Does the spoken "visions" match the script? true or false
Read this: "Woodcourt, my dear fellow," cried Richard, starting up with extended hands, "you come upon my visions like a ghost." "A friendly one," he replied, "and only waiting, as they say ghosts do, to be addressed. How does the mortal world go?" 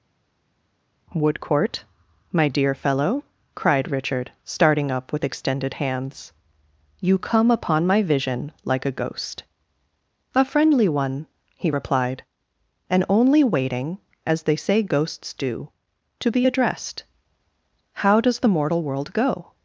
false